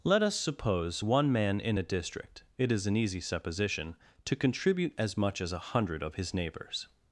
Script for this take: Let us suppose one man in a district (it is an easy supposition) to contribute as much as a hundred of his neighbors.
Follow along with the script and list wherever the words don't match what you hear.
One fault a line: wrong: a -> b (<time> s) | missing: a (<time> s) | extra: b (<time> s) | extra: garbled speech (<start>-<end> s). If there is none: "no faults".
no faults